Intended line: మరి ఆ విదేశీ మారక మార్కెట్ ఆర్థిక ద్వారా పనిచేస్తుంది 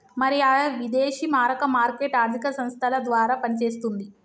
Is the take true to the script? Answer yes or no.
no